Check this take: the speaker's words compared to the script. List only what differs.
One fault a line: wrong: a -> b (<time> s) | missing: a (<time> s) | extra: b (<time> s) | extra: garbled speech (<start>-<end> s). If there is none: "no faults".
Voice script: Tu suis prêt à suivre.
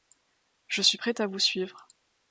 wrong: Tu -> Je (0.7 s)
extra: vous (1.3 s)